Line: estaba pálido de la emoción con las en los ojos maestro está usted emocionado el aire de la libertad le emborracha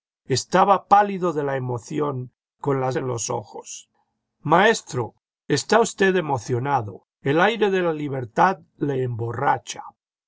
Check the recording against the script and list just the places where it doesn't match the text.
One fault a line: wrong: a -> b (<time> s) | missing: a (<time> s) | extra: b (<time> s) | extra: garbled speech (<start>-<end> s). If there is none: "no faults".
no faults